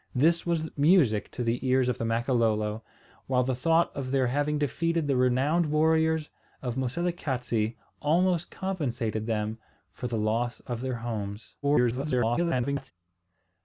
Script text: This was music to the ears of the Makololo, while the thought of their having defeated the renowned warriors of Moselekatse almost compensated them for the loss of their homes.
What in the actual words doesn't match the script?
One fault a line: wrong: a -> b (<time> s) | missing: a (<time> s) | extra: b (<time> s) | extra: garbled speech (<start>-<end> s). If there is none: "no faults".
extra: garbled speech (11.6-12.9 s)